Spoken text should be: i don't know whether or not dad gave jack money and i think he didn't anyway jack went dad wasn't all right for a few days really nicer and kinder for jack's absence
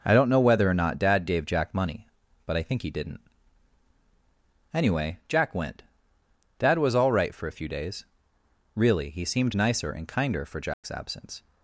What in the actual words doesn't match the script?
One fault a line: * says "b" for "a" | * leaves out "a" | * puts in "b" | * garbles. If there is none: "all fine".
* says "but" for "and"
* says "was" for "wasn't"
* puts in "he seemed"